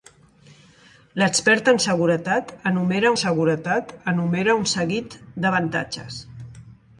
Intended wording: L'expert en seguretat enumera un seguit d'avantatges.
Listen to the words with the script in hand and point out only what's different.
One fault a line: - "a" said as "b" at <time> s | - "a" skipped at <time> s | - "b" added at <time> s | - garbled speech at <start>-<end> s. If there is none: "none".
- "seguretat enumera" added at 3.2 s